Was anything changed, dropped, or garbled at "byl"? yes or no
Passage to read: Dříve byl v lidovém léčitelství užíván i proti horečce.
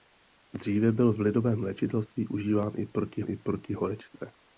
no